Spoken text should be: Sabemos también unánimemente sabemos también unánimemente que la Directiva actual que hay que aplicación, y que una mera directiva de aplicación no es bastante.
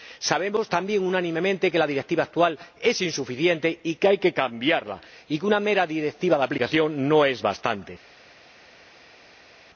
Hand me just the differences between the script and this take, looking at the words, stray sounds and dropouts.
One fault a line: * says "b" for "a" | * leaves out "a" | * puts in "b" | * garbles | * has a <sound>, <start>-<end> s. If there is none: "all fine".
* leaves out "sabemos también unánimemente"
* puts in "es insuficiente y"
* says "cambiarla" for "aplicación"